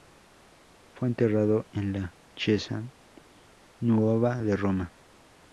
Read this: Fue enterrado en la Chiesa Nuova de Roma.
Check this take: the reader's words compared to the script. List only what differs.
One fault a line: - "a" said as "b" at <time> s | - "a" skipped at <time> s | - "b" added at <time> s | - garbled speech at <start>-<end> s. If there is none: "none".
none